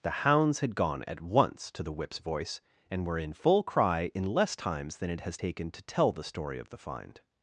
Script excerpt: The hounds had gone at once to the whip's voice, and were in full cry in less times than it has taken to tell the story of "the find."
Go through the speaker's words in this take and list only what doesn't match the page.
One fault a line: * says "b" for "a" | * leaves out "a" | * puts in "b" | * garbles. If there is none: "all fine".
all fine